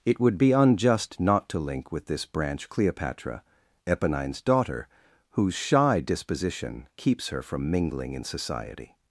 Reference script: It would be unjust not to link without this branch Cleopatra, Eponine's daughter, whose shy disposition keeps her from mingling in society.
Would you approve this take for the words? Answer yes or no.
no